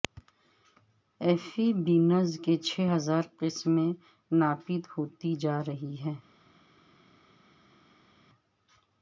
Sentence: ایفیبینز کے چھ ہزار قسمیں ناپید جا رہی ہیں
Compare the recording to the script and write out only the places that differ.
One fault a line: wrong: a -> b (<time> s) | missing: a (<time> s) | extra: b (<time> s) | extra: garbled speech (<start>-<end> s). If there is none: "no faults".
wrong: کے -> کی (2.4 s)
extra: ہوتی (4.9 s)